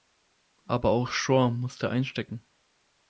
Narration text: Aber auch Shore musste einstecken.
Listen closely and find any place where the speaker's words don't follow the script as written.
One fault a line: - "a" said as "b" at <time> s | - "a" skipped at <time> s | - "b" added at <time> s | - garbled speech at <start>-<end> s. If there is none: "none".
none